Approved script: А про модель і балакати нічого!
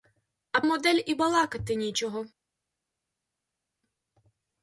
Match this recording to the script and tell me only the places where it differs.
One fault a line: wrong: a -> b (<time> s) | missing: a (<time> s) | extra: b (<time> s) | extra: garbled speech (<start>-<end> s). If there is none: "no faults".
missing: про (0.6 s)